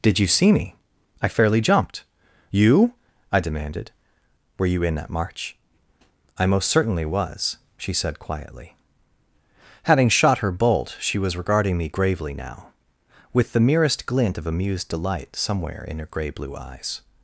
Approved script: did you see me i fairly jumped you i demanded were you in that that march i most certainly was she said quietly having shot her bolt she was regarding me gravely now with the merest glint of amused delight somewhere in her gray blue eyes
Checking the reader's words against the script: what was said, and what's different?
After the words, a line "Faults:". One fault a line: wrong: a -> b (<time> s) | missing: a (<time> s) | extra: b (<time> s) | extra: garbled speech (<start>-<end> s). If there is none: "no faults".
did you see me i fairly jumped you i demanded were you in that march i most certainly was she said quietly having shot her bolt she was regarding me gravely now with the merest glint of amused delight somewhere in her gray blue eyes
Faults:
missing: that (5.1 s)